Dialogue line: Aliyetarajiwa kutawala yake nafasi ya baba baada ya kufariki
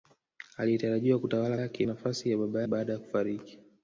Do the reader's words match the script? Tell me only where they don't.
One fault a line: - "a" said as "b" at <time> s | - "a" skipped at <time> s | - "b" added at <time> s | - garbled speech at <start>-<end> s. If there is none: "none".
none